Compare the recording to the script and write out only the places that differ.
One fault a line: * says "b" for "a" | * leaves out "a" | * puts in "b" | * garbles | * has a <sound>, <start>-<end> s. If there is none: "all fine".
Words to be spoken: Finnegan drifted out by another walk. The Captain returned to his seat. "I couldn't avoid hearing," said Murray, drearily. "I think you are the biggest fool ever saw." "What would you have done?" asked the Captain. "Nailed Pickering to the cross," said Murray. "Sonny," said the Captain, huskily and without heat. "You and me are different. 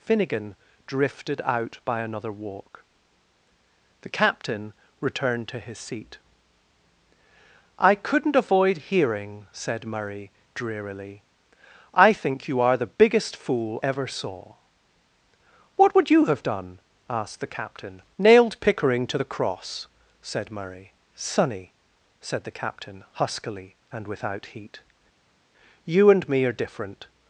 all fine